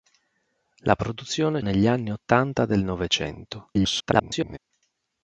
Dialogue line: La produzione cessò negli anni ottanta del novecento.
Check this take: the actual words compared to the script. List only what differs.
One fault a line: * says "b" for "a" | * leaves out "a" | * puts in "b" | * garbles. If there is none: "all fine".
* leaves out "cessò"
* garbles